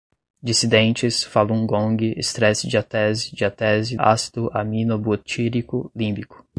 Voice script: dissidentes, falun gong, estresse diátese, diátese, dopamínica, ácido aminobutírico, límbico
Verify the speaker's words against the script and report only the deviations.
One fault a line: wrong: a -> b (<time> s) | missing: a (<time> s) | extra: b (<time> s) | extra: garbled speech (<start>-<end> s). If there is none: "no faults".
missing: dopamínica (4.0 s)